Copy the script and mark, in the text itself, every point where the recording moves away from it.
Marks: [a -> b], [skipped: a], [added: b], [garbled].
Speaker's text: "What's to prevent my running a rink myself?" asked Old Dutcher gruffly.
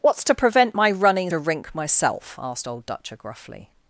"What's to prevent my running a rink myself?" asked Old Dutcher gruffly.